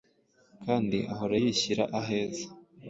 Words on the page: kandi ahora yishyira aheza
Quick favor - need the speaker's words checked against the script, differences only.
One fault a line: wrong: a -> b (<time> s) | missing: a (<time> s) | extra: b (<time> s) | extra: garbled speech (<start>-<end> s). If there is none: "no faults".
no faults